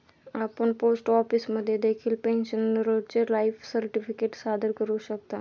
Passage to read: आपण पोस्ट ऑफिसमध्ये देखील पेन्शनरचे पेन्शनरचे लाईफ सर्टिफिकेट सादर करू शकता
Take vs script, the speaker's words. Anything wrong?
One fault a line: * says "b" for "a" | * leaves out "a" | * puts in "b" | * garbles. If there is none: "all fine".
* leaves out "पेन्शनरचे"